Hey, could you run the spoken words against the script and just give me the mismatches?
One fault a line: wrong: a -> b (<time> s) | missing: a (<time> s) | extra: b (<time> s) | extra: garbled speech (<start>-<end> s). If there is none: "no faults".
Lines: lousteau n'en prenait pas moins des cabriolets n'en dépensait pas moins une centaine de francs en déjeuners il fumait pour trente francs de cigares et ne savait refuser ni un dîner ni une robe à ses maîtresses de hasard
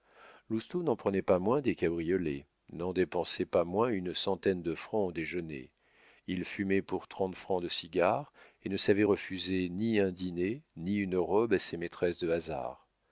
no faults